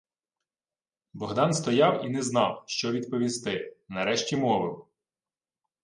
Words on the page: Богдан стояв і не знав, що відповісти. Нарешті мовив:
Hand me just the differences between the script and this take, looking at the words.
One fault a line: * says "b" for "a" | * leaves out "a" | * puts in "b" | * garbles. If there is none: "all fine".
all fine